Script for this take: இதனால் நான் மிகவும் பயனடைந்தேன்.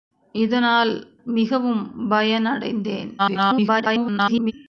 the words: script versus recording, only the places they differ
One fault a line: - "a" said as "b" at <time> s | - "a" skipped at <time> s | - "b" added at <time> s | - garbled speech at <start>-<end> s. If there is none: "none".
- "நான்" skipped at 0.9 s
- garbled speech at 3.2-4.5 s